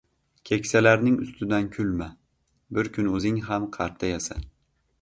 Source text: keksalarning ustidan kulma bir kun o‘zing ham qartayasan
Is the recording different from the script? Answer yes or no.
no